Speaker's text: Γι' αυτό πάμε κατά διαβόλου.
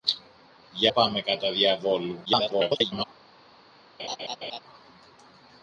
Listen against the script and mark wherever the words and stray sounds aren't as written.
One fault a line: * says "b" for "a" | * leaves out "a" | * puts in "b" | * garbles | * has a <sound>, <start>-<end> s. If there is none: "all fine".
* leaves out "αυτό"
* garbles
* has a laugh, 4.0-4.6 s